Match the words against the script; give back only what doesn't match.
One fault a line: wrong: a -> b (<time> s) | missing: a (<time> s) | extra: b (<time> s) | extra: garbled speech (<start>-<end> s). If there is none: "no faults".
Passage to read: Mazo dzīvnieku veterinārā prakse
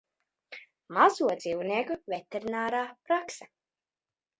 no faults